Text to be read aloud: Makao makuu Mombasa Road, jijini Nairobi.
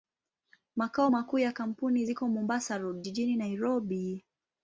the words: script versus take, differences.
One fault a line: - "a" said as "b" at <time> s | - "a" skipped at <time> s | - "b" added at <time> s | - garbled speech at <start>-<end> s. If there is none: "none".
- "ya kampuni ziko" added at 1.4 s